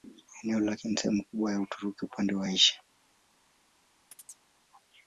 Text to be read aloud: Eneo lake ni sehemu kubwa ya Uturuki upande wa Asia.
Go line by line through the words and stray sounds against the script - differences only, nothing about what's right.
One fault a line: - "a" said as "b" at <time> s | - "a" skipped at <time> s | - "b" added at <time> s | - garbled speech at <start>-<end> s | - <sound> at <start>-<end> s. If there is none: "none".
- chirp at 4.1-4.5 s